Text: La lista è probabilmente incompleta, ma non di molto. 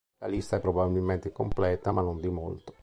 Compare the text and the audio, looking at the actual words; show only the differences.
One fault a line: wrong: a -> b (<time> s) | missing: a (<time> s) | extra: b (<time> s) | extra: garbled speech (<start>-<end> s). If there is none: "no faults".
no faults